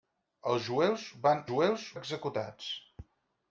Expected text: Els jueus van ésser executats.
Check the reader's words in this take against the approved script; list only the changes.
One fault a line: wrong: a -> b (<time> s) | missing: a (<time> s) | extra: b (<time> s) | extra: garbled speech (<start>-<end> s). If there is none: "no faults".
wrong: ésser -> jueus (1.5 s)